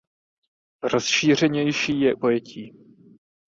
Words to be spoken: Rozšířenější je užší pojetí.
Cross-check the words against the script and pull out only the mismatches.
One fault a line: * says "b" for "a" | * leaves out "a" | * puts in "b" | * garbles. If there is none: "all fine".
* leaves out "užší"